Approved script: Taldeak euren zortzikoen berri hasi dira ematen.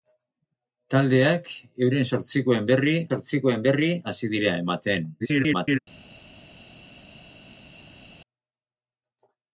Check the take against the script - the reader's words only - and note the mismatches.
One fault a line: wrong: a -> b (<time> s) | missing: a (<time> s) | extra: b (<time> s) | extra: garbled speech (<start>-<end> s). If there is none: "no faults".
extra: zortzikoen berri (3.1 s)
extra: garbled speech (5.2-5.8 s)